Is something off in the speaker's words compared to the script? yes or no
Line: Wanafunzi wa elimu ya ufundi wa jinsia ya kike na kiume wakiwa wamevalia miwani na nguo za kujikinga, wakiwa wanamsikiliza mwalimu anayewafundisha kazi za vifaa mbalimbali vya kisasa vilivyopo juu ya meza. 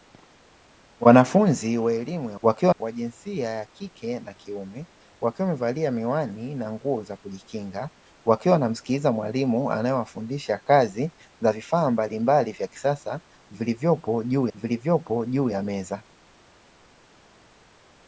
yes